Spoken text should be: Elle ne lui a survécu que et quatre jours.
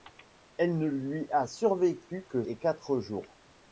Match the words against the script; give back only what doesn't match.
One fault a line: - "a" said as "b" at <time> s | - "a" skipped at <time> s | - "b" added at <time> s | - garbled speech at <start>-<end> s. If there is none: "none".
none